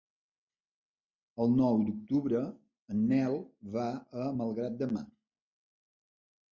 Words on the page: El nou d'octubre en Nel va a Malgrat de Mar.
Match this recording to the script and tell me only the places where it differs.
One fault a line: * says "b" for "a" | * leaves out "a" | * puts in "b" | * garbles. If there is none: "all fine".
all fine